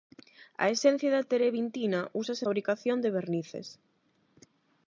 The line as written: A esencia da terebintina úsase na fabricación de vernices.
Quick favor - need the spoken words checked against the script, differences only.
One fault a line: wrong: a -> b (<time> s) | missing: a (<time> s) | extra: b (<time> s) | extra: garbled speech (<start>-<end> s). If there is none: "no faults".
missing: na (2.4 s)